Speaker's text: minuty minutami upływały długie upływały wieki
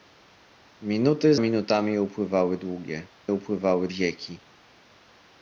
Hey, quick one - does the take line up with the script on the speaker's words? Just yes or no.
yes